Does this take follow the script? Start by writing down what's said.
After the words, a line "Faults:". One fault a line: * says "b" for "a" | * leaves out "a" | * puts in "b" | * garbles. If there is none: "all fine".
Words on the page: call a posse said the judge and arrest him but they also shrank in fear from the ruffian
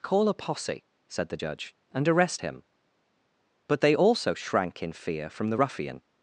call a posse said the judge and arrest him but they also shrank in fear from the ruffian
Faults:
all fine